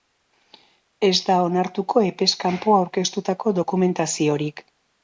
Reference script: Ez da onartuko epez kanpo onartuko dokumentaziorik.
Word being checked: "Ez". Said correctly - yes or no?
yes